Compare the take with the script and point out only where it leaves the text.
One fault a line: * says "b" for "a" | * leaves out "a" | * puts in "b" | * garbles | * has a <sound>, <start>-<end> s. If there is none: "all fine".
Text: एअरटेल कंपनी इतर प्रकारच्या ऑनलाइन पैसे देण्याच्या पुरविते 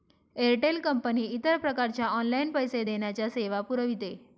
* puts in "सेवा"